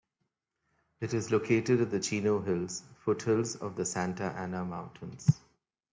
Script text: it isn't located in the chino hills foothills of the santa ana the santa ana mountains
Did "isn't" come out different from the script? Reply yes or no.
yes